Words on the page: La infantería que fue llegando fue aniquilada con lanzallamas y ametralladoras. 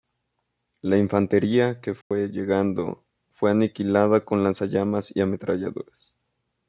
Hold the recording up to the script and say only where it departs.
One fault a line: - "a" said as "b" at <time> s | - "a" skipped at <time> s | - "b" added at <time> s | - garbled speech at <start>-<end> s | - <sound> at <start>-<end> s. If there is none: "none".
- dropout at 2.0-2.1 s